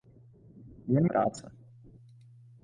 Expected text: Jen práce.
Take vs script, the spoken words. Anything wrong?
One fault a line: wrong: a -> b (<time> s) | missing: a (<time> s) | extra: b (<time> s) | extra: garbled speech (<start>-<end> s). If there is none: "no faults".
no faults